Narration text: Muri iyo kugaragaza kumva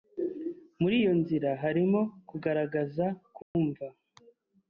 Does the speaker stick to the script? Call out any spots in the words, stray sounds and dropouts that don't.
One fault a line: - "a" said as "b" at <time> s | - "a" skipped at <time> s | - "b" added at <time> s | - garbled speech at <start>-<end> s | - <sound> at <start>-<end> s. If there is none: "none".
- "nzira harimo" added at 1.2 s
- dropout at 3.4-3.5 s